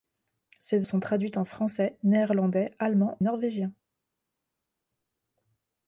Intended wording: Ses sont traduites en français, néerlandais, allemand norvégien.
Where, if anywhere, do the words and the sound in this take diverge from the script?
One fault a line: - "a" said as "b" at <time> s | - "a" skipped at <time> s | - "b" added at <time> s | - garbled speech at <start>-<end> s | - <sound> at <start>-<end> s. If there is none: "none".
none